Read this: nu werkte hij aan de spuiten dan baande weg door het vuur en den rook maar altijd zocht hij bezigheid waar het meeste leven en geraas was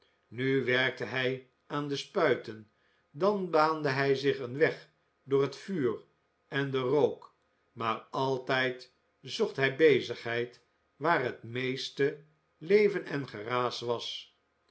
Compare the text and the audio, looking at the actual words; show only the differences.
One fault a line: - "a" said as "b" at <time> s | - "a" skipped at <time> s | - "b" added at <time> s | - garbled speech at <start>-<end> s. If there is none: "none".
- "hij zich een" added at 3.9 s